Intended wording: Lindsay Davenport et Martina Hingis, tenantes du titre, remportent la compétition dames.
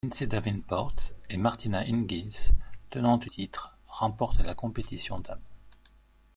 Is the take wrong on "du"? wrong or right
wrong